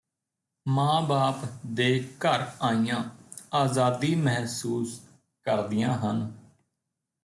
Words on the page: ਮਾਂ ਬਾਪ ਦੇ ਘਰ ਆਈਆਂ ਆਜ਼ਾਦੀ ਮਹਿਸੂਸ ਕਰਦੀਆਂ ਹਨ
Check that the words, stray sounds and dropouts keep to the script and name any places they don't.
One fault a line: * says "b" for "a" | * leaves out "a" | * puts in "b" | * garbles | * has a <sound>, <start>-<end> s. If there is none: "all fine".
all fine